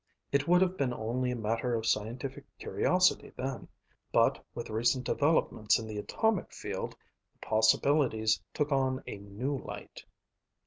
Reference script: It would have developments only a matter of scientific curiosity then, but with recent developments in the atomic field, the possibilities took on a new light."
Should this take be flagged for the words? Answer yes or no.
yes